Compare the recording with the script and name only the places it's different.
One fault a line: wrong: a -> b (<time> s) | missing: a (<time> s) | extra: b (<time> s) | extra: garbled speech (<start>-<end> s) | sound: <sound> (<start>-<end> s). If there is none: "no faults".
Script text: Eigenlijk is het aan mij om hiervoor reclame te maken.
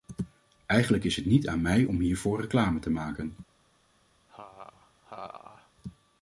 extra: niet (1.2 s)
sound: laugh (4.3-5.7 s)